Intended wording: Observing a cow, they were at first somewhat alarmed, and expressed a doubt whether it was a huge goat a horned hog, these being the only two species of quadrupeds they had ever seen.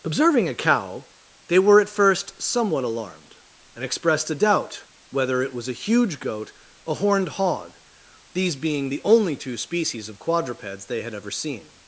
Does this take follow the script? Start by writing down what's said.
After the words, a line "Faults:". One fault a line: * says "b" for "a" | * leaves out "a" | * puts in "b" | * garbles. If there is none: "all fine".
Observing a cow, they were at first somewhat alarmed, and expressed a doubt whether it was a huge goat a horned hog, these being the only two species of quadrupeds they had ever seen.
Faults:
all fine